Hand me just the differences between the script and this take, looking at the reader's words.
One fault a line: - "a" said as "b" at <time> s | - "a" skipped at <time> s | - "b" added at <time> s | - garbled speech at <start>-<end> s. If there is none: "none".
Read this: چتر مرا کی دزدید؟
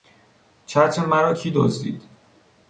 none